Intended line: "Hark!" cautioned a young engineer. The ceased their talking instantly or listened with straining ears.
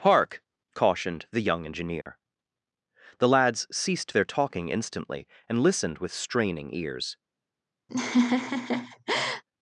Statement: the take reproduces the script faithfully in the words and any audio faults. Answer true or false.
false